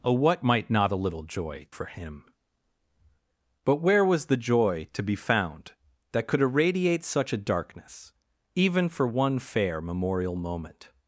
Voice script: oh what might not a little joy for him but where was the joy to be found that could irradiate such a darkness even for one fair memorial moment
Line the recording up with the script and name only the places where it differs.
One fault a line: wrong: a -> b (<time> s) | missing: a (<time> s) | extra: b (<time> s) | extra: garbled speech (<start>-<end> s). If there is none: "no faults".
no faults